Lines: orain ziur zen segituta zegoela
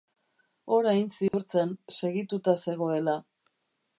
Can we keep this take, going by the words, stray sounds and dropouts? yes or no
no